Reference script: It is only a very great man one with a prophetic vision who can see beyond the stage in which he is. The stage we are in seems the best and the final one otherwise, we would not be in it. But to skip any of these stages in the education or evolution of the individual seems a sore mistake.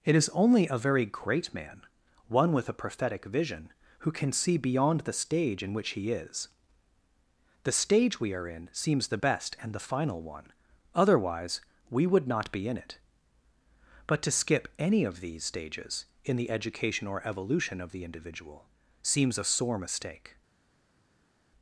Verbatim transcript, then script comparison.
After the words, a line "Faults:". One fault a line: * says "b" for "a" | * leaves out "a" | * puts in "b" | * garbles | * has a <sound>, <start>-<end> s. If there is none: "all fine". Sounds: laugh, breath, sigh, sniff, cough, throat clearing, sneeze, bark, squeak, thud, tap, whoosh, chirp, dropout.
It is only a very great man one with a prophetic vision who can see beyond the stage in which he is. The stage we are in seems the best and the final one otherwise, we would not be in it. But to skip any of these stages in the education or evolution of the individual seems a sore mistake.
Faults:
all fine